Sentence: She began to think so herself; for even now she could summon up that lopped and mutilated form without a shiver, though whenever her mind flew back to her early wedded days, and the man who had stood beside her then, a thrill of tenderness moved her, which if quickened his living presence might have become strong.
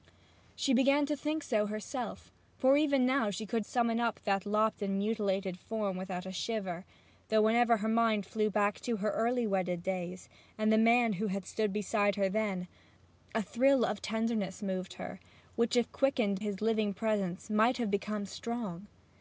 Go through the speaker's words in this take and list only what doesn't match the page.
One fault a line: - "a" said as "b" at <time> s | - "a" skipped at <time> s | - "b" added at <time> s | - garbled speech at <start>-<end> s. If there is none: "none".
none